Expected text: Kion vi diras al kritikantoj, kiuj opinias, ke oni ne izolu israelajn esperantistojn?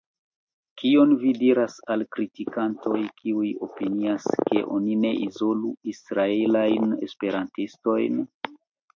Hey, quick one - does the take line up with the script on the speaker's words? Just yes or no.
yes